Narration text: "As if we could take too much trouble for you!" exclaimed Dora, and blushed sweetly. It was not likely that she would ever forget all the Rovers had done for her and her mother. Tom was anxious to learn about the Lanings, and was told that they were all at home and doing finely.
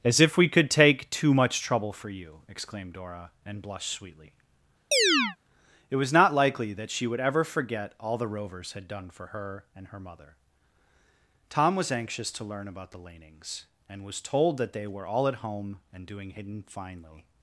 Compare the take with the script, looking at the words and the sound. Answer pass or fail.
fail